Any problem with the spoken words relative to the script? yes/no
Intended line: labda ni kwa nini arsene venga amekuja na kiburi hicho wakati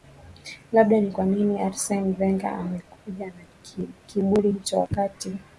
no